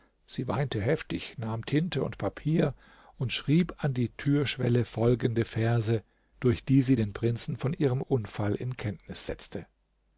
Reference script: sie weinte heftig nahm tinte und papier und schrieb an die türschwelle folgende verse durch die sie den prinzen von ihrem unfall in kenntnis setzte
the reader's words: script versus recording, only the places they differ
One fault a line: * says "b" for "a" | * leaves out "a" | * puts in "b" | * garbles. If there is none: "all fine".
all fine